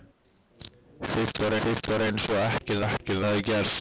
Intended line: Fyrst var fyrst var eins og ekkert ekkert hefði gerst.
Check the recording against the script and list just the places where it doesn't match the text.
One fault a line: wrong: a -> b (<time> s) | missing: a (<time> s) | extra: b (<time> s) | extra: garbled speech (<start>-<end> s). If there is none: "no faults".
no faults